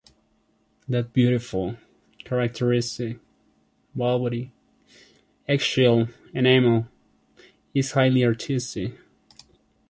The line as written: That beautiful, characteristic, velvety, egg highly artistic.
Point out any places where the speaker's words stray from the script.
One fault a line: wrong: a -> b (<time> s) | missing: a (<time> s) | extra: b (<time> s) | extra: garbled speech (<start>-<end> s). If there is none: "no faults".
extra: shell enamel is (5.6 s)